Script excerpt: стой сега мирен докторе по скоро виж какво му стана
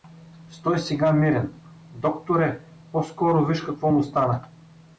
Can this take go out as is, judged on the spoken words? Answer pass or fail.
pass